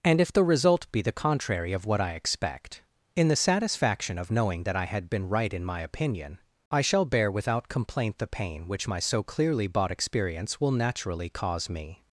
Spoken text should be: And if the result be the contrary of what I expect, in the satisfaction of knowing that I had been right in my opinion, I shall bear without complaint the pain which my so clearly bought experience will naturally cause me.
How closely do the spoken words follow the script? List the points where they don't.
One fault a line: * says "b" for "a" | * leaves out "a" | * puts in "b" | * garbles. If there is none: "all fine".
all fine